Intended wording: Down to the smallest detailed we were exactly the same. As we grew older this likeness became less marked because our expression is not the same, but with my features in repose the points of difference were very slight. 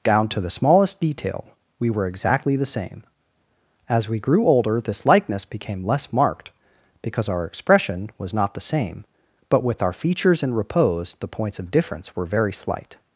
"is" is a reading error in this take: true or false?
true